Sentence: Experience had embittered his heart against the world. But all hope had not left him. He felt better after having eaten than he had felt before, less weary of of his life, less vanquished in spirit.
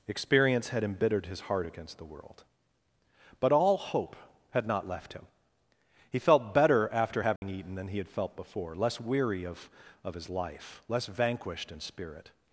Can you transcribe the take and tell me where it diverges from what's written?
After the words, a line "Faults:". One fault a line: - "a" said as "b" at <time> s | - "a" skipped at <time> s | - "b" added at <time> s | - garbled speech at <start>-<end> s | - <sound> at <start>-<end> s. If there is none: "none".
Experience had embittered his heart against the world. But all hope had not left him. He felt better after having eaten than he had felt before, less weary of of his life, less vanquished in spirit.
Faults:
- dropout at 7.4-7.4 s